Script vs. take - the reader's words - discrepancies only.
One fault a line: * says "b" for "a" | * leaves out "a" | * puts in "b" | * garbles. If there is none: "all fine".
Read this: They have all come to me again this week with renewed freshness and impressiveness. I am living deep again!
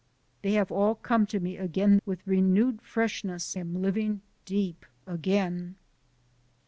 * leaves out "this week"
* leaves out "and impressiveness I"